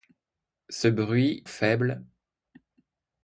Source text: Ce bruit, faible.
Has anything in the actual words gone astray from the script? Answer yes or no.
no